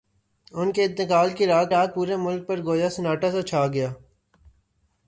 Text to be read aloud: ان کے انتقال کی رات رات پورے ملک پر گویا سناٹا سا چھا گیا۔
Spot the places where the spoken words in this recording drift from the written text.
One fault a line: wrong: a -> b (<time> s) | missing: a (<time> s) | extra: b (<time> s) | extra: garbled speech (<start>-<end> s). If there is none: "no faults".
no faults